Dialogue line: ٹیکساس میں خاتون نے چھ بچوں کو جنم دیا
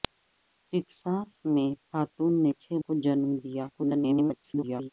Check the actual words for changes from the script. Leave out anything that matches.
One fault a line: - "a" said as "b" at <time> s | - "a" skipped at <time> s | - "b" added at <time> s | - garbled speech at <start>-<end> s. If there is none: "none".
- "بچوں" skipped at 2.7 s
- garbled speech at 3.7-4.9 s